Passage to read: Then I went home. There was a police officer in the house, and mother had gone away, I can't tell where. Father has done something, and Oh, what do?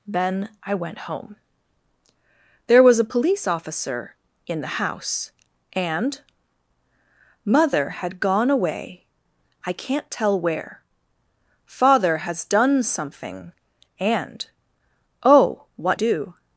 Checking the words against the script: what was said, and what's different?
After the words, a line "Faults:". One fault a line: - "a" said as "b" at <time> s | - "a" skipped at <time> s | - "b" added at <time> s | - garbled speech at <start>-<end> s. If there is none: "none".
Then I went home. There was a police officer in the house, and mother had gone away, I can't tell where. Father has done something, and Oh, what do?
Faults:
none